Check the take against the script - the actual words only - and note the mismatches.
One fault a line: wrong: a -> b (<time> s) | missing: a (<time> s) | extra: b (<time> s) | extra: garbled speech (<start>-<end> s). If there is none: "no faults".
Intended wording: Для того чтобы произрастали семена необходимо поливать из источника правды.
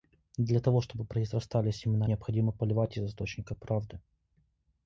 no faults